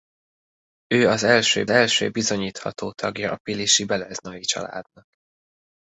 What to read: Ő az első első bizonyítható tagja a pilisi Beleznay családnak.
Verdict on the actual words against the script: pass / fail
pass